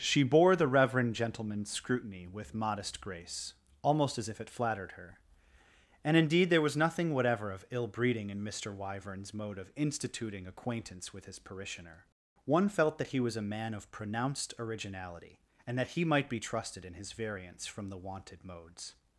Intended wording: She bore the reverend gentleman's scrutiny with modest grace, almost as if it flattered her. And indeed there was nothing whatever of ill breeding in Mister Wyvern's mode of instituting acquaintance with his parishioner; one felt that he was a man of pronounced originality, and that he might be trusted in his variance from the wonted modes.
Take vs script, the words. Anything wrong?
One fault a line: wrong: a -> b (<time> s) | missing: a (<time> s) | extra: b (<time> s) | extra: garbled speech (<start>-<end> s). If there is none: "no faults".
no faults